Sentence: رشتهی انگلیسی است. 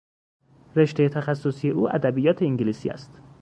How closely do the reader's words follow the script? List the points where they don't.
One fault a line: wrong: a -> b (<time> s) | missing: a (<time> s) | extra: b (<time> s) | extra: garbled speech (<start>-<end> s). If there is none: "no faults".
extra: تخصصی او ادبیات (1.1 s)